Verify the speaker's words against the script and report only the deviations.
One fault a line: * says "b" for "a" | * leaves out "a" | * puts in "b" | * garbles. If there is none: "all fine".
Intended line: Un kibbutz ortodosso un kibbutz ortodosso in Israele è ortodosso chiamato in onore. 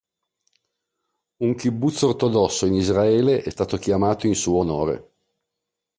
* leaves out "un kibbutz ortodosso"
* says "stato" for "ortodosso"
* puts in "suo"